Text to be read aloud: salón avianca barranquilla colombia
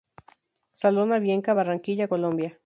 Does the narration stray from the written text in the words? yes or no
no